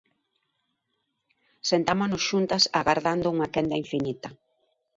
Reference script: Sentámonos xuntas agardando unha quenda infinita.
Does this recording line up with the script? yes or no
yes